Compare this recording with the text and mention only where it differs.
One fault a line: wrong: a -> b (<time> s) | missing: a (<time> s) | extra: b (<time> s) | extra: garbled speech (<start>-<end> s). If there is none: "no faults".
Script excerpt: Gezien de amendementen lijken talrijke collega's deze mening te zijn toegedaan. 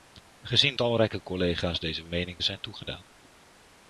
missing: de amendementen lijken (0.8 s)
missing: te (2.4 s)